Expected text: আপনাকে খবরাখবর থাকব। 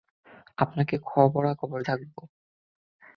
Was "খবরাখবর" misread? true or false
false